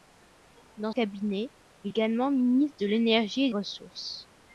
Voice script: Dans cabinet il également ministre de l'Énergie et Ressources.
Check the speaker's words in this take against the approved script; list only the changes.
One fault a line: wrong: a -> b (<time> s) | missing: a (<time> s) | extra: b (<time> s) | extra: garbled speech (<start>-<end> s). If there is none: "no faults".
no faults